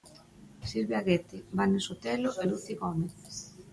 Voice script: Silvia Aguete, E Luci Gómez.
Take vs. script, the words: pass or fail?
fail